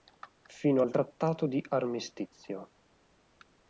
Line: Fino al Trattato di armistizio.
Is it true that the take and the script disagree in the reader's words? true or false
false